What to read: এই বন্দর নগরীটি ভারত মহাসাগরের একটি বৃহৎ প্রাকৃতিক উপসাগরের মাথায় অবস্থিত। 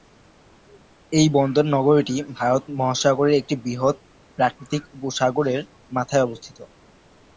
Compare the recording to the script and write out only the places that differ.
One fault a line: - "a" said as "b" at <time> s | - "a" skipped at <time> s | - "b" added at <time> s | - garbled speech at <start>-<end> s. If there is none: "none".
none